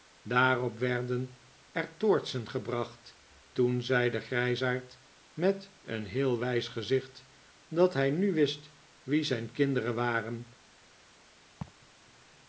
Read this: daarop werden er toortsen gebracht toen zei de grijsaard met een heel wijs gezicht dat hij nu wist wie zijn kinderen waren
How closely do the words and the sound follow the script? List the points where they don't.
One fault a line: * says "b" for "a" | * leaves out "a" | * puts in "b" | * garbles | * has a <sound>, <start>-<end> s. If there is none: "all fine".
* has a laugh, 11.6-11.9 s